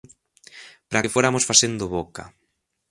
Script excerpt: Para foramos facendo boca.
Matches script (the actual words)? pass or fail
fail